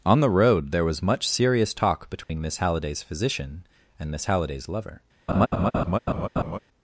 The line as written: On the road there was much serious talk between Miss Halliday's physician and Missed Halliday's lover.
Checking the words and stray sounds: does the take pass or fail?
fail